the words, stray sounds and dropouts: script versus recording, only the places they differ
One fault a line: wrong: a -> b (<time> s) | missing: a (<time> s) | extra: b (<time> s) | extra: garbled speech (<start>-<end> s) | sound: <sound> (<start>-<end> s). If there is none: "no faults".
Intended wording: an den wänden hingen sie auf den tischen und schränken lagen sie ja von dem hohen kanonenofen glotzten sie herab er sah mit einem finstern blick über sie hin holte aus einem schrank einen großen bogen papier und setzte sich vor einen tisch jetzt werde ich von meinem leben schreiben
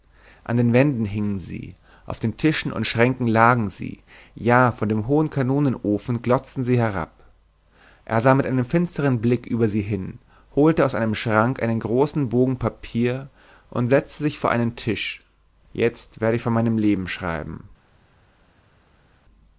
no faults